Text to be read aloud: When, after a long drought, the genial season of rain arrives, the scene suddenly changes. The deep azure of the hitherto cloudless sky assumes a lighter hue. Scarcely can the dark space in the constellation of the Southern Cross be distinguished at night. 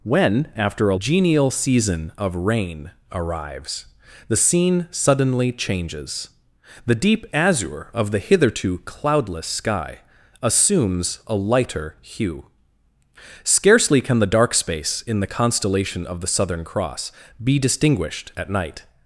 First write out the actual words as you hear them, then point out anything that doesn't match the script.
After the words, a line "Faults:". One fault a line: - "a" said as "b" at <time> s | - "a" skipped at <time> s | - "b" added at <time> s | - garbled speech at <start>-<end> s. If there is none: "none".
When, after a genial season of rain arrives, the scene suddenly changes. The deep azure of the hitherto cloudless sky assumes a lighter hue. Scarcely can the dark space in the constellation of the Southern Cross be distinguished at night.
Faults:
- "long drought the" skipped at 0.9 s